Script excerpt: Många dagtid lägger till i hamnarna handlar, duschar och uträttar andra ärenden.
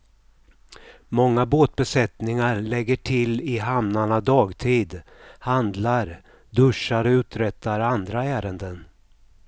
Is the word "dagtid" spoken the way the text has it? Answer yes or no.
no